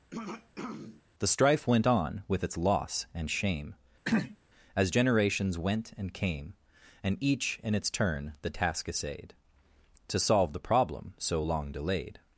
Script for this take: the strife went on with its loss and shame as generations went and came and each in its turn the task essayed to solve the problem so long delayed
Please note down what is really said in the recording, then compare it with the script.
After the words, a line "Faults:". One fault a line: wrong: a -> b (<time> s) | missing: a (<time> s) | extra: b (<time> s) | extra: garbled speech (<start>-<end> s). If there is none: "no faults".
the strife went on with its loss and shame as generations went and came and each in its turn the task essayed to solve the problem so long delayed
Faults:
no faults